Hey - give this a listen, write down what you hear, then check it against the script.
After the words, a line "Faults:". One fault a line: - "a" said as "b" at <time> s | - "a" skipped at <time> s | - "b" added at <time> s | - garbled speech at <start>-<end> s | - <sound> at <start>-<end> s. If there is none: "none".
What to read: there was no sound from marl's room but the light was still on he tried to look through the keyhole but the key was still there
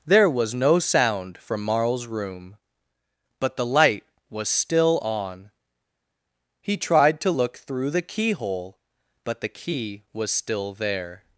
there was no sound from marl's room but the light was still on he tried to look through the keyhole but the key was still there
Faults:
none